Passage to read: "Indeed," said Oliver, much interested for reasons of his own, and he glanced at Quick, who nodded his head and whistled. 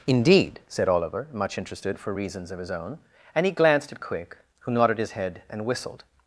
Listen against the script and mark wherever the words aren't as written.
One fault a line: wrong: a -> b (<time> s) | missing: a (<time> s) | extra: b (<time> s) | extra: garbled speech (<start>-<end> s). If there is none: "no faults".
no faults